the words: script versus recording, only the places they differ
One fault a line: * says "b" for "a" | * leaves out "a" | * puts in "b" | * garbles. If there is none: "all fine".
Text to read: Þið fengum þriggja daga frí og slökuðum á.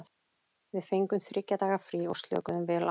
* says "Við" for "Þið"
* puts in "vel"